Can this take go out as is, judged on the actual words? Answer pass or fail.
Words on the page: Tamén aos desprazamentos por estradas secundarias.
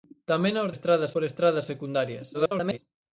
fail